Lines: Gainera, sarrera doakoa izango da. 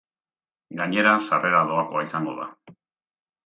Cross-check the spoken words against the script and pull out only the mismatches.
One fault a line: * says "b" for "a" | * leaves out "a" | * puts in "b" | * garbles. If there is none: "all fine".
all fine